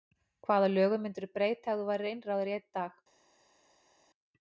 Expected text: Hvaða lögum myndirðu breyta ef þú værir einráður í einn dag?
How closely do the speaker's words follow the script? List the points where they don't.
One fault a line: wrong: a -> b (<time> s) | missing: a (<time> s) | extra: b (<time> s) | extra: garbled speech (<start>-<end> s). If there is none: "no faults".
no faults